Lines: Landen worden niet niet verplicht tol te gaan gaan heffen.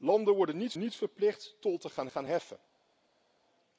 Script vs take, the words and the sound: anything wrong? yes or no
no